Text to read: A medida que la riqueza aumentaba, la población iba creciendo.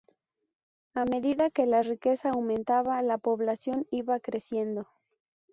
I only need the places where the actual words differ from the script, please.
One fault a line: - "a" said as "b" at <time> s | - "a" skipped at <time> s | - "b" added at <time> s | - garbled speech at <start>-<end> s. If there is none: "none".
none